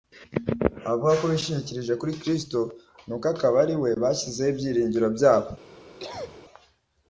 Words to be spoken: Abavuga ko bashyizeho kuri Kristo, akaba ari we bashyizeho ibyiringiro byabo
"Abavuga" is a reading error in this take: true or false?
false